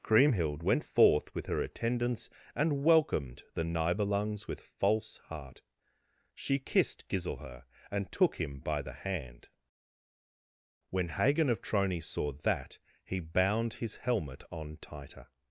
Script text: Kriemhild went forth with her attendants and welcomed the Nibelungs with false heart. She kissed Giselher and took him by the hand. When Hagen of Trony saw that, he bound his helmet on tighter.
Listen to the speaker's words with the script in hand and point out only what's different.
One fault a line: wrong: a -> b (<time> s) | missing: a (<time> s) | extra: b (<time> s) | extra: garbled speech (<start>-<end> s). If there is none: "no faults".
no faults